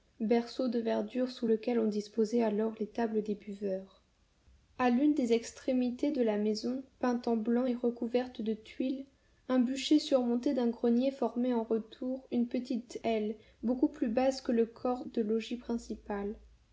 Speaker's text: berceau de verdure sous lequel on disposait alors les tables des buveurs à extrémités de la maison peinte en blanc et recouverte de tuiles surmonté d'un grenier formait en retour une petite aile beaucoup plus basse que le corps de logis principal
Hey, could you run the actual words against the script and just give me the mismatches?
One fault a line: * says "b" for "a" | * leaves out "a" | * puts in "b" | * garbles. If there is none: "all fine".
* puts in "l'une des"
* puts in "un bûcher"